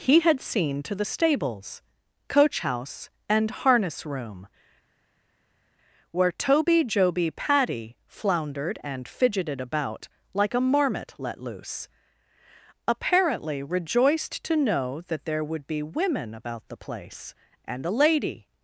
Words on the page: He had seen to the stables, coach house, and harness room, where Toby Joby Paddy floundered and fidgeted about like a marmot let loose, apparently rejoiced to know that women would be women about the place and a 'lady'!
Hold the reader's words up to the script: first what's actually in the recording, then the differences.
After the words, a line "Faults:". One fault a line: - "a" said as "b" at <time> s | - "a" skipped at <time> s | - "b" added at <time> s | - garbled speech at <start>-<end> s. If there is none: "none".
He had seen to the stables, coach house, and harness room, where Toby Joby Paddy floundered and fidgeted about like a marmot let loose, apparently rejoiced to know that there would be women about the place and a 'lady'!
Faults:
- "women" said as "there" at 15.2 s